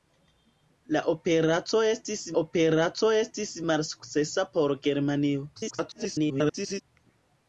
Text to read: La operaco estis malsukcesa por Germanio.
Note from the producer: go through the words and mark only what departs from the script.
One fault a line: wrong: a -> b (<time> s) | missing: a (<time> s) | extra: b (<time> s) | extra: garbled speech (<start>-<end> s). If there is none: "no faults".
extra: operaco estis (2.4 s)
extra: garbled speech (5.5-6.8 s)